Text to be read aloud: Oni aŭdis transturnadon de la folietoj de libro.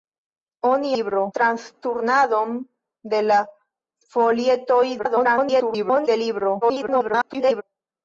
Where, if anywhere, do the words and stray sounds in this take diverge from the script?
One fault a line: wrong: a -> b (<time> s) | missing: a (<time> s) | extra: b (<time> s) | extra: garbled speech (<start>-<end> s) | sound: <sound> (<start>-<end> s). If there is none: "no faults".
wrong: aŭdis -> libro (0.9 s)
extra: garbled speech (5.0-6.1 s)
extra: garbled speech (6.6-7.6 s)